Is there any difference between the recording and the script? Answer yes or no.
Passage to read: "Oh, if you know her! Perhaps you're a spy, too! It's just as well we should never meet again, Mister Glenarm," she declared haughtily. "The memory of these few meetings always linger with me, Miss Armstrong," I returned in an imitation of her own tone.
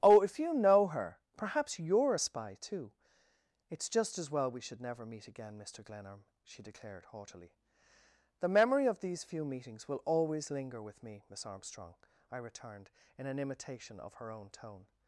yes